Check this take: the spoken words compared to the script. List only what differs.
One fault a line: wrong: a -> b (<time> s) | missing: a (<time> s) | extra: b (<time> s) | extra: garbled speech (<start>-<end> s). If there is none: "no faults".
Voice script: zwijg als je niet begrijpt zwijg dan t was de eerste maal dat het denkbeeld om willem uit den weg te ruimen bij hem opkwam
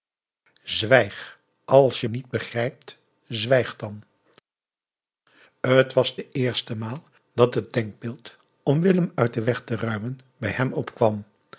no faults